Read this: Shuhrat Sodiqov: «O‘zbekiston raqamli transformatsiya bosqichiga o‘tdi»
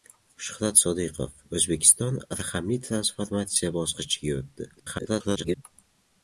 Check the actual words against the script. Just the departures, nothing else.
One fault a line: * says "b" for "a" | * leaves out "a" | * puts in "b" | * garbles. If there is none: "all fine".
* garbles